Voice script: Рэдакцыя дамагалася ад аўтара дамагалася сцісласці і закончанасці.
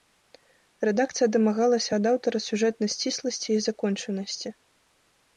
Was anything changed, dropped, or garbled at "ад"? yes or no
no